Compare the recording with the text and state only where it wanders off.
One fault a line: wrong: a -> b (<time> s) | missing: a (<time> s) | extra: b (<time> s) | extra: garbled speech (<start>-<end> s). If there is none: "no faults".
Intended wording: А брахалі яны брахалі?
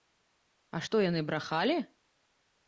wrong: брахалі -> што (0.8 s)